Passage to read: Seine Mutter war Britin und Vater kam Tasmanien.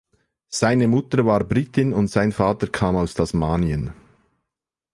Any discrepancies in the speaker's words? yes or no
yes